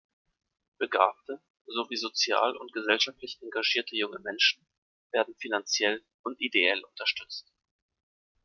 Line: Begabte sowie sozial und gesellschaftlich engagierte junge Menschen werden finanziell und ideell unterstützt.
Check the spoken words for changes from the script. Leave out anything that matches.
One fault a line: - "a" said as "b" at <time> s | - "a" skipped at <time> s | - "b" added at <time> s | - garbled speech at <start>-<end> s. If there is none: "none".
none